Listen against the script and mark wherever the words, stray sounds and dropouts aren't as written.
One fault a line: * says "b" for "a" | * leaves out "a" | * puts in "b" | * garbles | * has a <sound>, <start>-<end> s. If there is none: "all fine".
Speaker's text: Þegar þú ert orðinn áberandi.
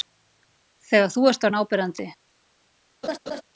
* has a laugh, 3.0-3.4 s